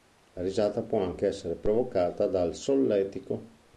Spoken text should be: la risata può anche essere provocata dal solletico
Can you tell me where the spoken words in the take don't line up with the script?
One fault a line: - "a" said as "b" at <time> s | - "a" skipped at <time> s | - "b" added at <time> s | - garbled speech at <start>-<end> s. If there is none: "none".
none